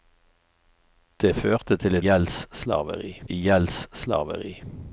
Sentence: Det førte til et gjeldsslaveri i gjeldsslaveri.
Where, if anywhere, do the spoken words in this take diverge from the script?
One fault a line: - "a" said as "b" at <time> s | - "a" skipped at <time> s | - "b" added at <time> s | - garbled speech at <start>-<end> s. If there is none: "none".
none